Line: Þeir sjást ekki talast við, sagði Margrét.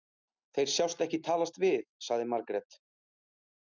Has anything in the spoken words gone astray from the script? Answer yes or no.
no